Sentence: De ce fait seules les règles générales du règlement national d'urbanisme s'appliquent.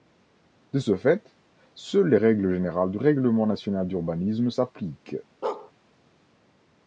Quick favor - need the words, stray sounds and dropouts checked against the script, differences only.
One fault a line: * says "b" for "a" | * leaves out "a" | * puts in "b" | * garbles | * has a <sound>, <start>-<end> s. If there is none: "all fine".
* has a bark, 5.4-5.7 s